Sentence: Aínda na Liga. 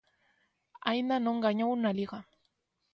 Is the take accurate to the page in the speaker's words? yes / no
no